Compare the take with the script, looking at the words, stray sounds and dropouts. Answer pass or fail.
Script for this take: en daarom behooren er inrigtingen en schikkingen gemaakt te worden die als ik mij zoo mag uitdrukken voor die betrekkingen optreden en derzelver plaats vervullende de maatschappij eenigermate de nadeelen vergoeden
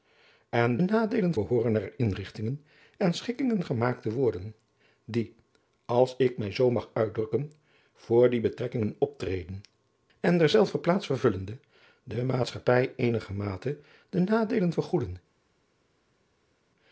fail